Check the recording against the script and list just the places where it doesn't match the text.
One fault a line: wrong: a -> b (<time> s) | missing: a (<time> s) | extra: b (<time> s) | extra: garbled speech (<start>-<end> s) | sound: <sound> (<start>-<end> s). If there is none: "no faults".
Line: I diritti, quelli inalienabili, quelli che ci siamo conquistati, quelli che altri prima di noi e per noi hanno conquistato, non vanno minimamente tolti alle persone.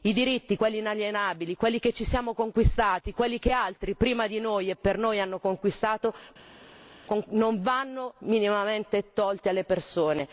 no faults